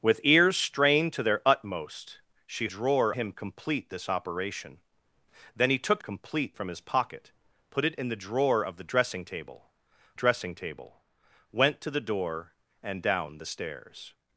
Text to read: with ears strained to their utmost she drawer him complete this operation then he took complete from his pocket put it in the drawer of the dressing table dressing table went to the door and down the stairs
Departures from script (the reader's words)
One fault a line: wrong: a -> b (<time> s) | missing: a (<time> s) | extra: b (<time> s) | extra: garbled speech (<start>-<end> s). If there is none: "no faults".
no faults